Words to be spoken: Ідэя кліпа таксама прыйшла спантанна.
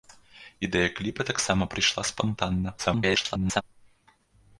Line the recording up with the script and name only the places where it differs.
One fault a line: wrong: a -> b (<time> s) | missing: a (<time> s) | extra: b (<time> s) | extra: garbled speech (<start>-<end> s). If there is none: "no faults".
extra: garbled speech (2.8-3.6 s)